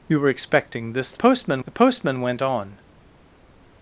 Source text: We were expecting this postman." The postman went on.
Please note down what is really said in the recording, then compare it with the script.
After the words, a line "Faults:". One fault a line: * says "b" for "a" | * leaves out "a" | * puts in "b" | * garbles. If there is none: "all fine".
We were expecting this postman." The postman went on.
Faults:
all fine